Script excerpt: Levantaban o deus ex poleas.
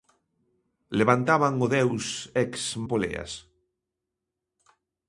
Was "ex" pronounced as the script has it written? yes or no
yes